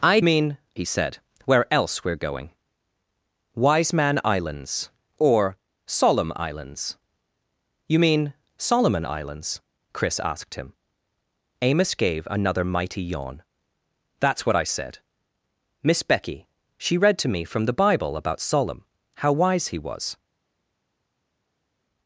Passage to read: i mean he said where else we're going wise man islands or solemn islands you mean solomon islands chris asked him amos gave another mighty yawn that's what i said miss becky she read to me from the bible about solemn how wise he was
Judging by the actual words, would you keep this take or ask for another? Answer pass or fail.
pass